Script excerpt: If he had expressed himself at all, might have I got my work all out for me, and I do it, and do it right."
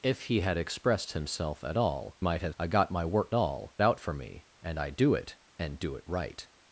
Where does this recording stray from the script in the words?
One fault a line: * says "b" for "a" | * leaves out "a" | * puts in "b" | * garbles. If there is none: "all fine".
all fine